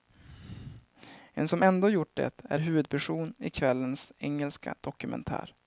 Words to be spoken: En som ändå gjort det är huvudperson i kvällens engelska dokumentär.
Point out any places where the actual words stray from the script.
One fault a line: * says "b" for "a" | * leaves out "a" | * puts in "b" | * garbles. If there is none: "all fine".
all fine